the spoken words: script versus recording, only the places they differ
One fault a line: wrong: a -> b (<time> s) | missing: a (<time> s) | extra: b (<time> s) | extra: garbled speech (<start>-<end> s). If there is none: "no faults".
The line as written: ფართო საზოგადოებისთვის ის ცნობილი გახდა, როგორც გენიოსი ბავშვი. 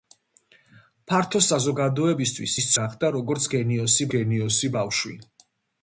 missing: ცნობილი (2.7 s)
extra: გენიოსი (4.2 s)